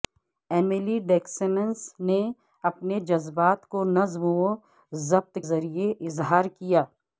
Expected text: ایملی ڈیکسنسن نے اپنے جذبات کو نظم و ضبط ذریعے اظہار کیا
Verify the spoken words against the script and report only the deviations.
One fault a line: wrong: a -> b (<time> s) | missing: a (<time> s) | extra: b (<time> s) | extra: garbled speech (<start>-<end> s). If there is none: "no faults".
no faults